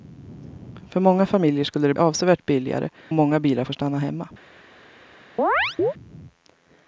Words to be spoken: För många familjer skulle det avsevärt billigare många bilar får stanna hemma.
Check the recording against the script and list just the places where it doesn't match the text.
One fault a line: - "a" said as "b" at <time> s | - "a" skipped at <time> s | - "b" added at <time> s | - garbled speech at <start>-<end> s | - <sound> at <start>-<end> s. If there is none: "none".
- chirp at 5.4-5.9 s